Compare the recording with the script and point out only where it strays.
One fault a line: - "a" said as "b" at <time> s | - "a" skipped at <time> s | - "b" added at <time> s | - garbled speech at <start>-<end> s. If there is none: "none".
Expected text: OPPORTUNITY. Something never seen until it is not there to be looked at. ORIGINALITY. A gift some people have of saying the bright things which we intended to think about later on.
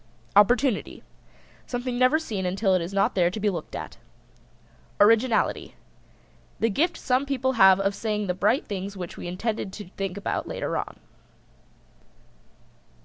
- "A" said as "The" at 6.6 s